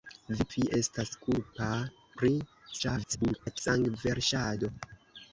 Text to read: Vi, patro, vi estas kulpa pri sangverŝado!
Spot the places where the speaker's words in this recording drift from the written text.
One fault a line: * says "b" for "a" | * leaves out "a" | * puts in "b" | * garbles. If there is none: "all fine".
* leaves out "patro"
* garbles